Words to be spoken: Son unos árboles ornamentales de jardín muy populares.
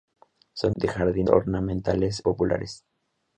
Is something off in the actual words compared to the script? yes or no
yes